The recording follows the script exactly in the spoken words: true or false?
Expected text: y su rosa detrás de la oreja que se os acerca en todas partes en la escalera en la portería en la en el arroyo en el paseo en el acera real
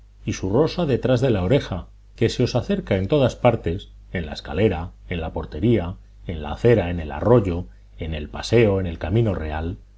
false